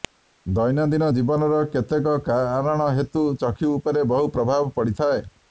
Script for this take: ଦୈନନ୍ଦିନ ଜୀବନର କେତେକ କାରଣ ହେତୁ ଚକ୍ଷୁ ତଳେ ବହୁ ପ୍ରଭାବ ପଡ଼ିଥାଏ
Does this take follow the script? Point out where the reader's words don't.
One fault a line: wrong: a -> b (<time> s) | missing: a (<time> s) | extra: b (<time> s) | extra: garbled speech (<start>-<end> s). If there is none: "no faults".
wrong: ତଳେ -> ଉପରେ (3.8 s)